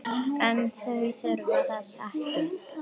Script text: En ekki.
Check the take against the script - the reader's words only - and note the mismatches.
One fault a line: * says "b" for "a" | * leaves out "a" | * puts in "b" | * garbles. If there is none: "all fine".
* puts in "þau þurfa þess"